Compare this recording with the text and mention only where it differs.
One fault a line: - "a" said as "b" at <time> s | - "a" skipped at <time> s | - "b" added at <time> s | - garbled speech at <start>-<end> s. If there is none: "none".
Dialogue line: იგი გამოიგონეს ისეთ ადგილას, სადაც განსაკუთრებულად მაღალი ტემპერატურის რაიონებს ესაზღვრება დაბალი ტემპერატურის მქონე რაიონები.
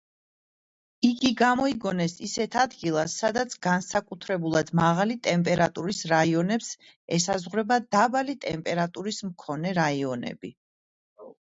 none